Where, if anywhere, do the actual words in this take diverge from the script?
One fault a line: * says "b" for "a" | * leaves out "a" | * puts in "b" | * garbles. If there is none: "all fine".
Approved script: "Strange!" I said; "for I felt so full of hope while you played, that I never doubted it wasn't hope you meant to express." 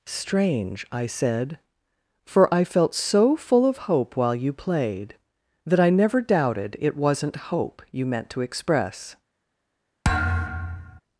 all fine